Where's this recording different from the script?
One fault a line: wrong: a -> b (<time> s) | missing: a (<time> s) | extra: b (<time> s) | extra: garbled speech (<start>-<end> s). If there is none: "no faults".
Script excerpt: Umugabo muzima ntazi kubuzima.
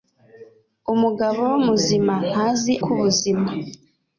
no faults